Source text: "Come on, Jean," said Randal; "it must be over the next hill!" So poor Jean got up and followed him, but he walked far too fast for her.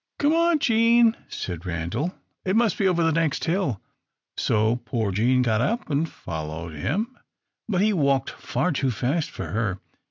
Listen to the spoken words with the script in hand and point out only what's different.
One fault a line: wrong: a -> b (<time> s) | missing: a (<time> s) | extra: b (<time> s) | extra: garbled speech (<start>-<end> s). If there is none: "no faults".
no faults